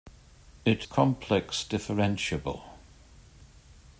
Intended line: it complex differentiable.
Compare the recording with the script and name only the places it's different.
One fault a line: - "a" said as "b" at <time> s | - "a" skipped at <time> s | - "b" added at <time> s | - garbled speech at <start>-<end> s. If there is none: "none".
none